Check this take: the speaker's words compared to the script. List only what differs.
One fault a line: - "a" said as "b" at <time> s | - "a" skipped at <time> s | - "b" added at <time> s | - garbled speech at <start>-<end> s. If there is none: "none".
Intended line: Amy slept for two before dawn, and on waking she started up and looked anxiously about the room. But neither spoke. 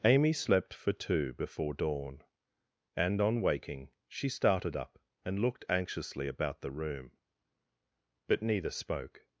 none